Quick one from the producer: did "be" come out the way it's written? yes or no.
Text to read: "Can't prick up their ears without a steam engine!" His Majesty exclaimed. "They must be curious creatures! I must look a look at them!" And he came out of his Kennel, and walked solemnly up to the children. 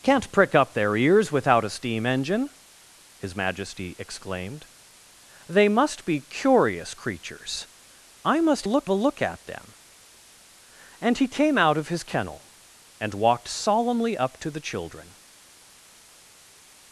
yes